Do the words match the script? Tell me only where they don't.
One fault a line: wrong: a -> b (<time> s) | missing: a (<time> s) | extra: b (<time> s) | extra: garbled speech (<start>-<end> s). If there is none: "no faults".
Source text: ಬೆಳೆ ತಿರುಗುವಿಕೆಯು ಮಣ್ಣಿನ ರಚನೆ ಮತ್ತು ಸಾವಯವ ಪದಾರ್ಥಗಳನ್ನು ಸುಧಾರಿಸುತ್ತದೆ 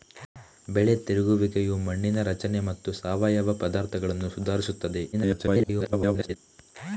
extra: garbled speech (5.1-6.4 s)